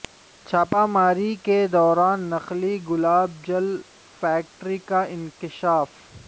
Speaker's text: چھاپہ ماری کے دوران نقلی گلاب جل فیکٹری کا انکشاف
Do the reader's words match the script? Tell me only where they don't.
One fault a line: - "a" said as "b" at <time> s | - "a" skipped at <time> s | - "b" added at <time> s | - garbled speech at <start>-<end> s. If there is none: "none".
none